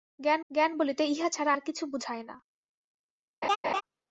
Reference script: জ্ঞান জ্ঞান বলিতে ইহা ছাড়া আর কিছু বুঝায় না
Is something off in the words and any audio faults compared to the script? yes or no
yes